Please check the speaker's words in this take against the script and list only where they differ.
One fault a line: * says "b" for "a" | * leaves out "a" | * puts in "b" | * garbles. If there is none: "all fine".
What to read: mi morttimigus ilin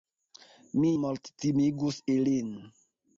all fine